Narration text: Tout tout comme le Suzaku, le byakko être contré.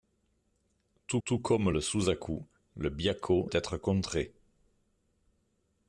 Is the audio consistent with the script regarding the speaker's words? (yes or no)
yes